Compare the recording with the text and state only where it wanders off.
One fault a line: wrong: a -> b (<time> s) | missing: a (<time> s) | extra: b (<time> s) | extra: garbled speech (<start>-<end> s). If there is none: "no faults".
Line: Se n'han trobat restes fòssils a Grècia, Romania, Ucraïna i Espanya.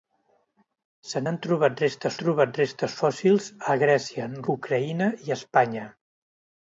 extra: trobat restes (2.2 s)
missing: Romania (4.3 s)